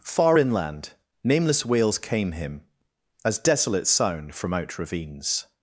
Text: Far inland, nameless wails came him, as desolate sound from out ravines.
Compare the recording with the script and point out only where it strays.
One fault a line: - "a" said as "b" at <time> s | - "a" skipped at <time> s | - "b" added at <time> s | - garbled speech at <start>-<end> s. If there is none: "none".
none